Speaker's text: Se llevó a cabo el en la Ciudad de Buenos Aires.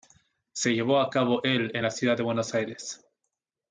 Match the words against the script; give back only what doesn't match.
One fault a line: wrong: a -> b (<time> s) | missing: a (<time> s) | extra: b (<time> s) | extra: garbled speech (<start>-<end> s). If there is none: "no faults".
no faults